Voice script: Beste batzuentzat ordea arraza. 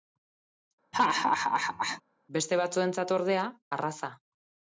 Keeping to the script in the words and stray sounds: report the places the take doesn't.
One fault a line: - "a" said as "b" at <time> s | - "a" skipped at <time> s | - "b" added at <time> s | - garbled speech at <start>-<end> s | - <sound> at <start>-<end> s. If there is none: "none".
- laugh at 0.9-2.0 s